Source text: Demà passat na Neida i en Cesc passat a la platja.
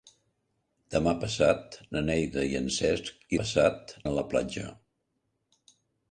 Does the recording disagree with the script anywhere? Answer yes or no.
no